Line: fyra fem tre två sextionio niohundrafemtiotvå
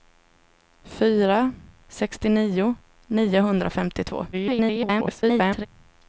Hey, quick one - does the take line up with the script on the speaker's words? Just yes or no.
no